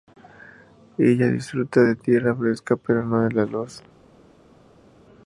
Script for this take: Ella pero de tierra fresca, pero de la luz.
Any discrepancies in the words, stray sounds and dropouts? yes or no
yes